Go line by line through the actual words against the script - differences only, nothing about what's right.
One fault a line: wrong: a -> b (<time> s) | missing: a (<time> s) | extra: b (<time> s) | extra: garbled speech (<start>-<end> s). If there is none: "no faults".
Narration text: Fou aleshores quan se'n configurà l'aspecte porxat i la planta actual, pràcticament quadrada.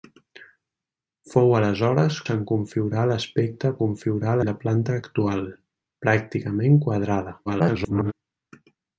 missing: quan (2.2 s)
wrong: porxat -> configurà (3.8 s)
extra: garbled speech (7.5-8.1 s)